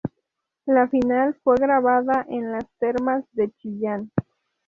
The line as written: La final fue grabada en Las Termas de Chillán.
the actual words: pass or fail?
pass